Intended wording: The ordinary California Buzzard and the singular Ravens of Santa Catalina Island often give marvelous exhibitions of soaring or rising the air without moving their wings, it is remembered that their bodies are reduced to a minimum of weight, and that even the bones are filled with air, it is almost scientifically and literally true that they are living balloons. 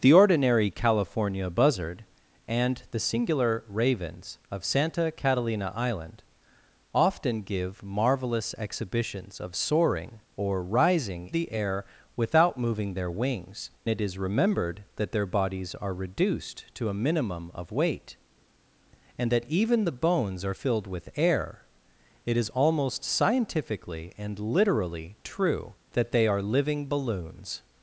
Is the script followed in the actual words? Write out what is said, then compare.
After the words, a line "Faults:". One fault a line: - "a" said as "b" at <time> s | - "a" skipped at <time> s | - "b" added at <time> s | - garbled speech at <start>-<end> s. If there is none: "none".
The ordinary California Buzzard and the singular Ravens of Santa Catalina Island often give marvelous exhibitions of soaring or rising the air without moving their wings, it is remembered that their bodies are reduced to a minimum of weight, and that even the bones are filled with air, it is almost scientifically and literally true that they are living balloons.
Faults:
none